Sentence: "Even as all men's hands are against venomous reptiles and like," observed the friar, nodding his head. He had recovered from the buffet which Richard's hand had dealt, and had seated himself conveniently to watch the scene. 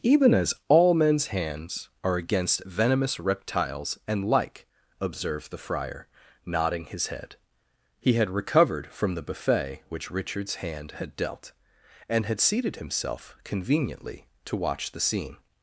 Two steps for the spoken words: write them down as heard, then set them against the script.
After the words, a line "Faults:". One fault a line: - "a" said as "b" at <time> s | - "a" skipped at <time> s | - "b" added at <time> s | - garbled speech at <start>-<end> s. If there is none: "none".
"Even as all men's hands are against venomous reptiles and like," observed the friar, nodding his head. He had recovered from the buffet which Richard's hand had dealt, and had seated himself conveniently to watch the scene.
Faults:
none